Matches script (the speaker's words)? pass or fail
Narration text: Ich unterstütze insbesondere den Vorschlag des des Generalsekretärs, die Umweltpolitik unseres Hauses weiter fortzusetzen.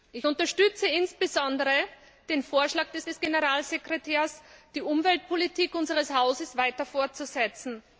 pass